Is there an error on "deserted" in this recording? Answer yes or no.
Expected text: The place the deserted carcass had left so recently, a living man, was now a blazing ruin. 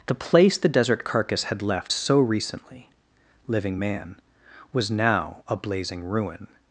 yes